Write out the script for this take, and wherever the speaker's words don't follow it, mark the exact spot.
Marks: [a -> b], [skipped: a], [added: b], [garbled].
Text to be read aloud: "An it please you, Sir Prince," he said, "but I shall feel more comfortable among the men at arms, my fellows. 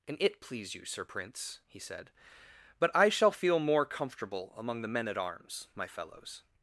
"An it please you, Sir Prince," he said, "but I shall feel more comfortable among the men at arms, my fellows.